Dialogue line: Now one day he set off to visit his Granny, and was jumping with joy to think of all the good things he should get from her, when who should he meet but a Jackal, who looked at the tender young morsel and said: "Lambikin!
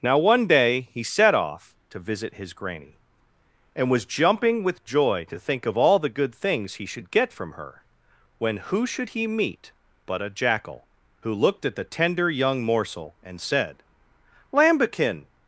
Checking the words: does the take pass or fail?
pass